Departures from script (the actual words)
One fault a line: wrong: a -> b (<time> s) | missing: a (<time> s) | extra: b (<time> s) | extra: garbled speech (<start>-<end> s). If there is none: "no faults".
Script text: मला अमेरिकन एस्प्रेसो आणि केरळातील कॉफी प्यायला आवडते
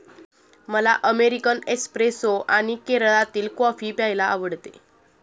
no faults